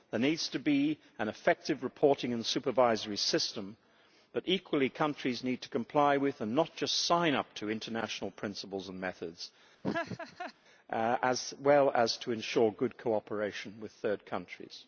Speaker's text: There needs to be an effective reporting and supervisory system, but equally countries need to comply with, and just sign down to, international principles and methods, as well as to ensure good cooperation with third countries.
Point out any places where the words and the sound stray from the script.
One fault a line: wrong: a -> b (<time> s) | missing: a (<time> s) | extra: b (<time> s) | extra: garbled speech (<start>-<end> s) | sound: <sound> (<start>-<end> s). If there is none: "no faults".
extra: not (6.5 s)
wrong: down -> up (7.3 s)
sound: laugh (9.8-10.5 s)